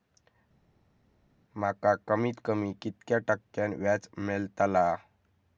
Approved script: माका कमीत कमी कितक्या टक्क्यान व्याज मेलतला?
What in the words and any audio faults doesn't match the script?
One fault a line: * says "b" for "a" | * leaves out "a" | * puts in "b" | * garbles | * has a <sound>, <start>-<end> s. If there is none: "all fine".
all fine